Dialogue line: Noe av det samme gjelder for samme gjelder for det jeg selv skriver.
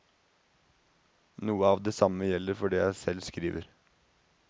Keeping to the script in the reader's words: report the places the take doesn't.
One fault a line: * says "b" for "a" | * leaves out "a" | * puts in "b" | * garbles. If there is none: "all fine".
* leaves out "samme gjelder for"